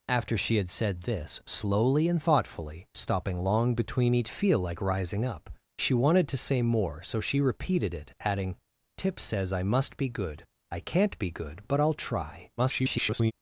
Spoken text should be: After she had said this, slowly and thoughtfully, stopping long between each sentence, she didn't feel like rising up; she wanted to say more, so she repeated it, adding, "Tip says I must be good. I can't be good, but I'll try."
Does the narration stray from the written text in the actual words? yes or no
yes